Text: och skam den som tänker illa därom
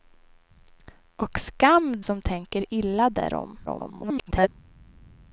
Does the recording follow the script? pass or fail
fail